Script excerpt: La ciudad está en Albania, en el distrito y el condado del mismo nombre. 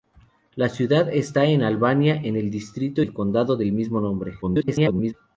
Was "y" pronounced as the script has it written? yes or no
no